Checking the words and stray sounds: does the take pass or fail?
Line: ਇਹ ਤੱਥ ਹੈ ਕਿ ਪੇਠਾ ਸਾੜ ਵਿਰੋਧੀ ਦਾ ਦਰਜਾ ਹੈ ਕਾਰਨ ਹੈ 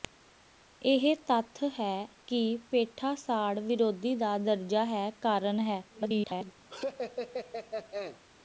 fail